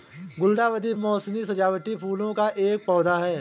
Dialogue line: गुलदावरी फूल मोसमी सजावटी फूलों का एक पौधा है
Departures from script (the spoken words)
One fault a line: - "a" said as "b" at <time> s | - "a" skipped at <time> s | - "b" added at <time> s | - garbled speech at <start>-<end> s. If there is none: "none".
- "फूल" skipped at 0.9 s